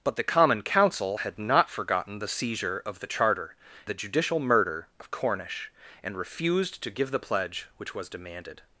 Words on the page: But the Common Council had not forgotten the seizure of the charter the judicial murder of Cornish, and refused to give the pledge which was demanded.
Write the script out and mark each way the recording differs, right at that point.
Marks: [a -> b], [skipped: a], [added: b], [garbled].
But the Common Council had not forgotten the seizure of the charter the judicial murder of Cornish, and refused to give the pledge which was demanded.